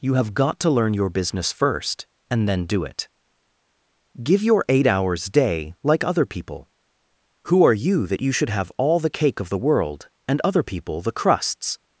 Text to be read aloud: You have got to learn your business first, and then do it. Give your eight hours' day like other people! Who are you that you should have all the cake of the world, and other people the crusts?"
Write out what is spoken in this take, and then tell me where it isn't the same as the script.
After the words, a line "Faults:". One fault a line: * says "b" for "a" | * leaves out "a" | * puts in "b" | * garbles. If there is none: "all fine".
You have got to learn your business first, and then do it. Give your eight hours' day like other people! Who are you that you should have all the cake of the world, and other people the crusts?"
Faults:
all fine